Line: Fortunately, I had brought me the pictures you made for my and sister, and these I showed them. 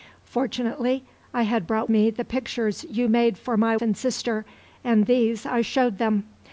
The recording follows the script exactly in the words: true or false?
true